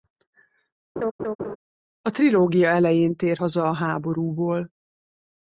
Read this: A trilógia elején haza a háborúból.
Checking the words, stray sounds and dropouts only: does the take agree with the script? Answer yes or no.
no